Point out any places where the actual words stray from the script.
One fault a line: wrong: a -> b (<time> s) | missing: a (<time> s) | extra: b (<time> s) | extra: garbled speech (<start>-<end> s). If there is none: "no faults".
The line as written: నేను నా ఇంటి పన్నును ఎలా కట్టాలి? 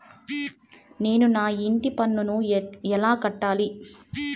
no faults